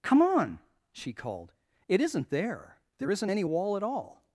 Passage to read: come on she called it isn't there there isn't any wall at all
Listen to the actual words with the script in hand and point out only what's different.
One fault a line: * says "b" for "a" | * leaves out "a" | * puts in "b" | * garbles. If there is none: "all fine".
all fine